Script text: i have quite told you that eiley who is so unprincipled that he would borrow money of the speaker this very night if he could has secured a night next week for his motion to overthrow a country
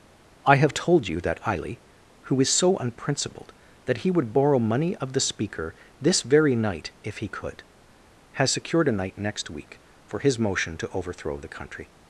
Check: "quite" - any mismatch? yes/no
yes